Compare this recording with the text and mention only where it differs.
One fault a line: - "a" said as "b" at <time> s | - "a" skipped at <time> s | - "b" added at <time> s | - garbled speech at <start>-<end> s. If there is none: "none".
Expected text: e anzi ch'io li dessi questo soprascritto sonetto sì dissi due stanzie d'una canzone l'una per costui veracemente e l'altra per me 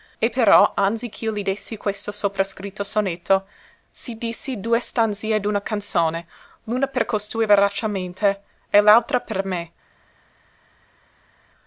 - "però" added at 0.3 s